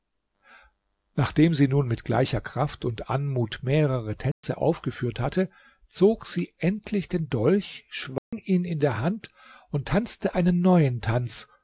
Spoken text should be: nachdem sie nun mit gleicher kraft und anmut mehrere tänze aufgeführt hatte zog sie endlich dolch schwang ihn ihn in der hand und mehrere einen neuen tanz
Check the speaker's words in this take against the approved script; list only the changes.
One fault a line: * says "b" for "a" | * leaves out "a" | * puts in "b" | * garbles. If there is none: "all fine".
* puts in "den"
* leaves out "ihn"
* says "tanzte" for "mehrere"